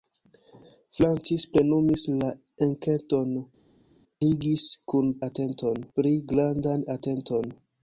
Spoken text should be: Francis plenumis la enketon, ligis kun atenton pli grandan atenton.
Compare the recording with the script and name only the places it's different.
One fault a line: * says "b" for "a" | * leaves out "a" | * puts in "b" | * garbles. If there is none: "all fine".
all fine